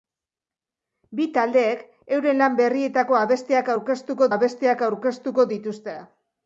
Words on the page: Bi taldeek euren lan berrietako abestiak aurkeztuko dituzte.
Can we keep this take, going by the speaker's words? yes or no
no